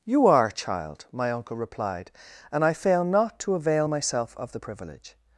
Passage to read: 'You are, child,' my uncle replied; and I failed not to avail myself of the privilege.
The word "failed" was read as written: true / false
false